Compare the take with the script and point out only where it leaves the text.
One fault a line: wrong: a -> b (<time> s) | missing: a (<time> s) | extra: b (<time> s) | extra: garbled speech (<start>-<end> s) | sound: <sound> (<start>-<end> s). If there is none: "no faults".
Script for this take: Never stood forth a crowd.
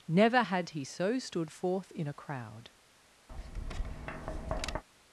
extra: had he so (0.4 s)
extra: in (1.9 s)
sound: tap (3.3-4.8 s)